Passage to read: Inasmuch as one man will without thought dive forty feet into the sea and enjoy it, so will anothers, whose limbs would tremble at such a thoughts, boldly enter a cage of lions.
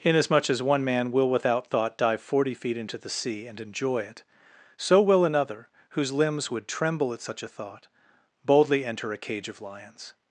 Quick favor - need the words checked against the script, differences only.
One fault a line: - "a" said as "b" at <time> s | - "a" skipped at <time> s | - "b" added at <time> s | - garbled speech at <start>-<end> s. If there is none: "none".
- "anothers" said as "another" at 5.2 s
- "thoughts" said as "thought" at 7.5 s